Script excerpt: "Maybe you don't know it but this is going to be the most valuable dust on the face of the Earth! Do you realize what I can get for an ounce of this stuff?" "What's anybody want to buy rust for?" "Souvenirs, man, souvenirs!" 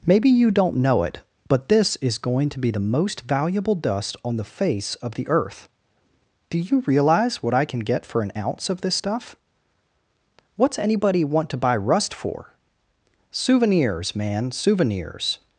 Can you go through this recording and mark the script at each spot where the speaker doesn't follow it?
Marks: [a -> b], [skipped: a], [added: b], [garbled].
"Maybe you don't know it but this is going to be the most valuable dust on the face of the Earth! Do you realize what I can get for an ounce of this stuff?" "What's anybody want to buy rust for?" "Souvenirs, man, souvenirs!"